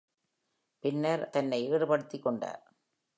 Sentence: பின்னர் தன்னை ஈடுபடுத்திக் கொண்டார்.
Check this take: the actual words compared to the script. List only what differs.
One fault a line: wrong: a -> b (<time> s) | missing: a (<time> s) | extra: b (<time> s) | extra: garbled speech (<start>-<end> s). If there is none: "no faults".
no faults